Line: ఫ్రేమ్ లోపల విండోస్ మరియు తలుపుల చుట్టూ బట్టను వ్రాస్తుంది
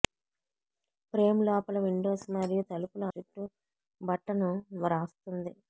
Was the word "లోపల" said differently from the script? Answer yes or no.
no